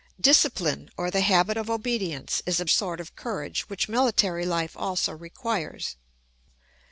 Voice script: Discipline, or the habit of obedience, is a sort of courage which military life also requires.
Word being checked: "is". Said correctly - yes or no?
yes